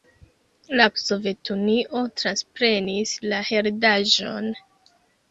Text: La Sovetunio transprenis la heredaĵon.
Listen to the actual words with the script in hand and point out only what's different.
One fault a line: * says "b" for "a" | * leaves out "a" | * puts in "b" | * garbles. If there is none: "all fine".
all fine